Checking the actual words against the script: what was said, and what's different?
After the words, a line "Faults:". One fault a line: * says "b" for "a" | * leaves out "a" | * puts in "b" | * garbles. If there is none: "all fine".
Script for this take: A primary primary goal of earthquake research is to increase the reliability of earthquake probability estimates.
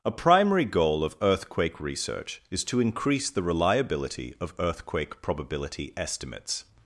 A primary goal of earthquake research is to increase the reliability of earthquake probability estimates.
Faults:
* leaves out "primary"